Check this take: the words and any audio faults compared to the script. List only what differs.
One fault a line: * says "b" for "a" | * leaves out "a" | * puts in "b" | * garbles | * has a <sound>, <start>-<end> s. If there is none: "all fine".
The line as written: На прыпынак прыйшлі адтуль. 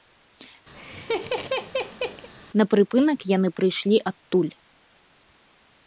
* has a laugh, 0.7-2.3 s
* puts in "яны"